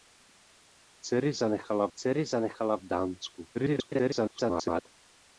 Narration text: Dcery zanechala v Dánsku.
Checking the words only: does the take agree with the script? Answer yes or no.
no